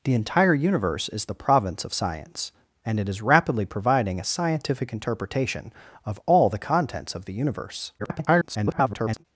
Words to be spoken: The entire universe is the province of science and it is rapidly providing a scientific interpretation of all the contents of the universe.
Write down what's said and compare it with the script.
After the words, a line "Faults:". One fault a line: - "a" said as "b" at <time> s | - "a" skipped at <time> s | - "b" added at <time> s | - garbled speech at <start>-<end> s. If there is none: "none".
The entire universe is the province of science and it is rapidly providing a scientific interpretation of all the contents of the universe. [garbled]
Faults:
- garbled speech at 8.0-9.2 s